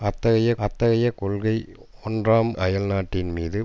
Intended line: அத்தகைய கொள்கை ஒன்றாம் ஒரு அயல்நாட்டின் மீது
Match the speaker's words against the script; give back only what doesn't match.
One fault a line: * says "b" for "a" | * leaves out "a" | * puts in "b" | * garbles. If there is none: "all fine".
* puts in "அத்தகைய"
* leaves out "ஒரு"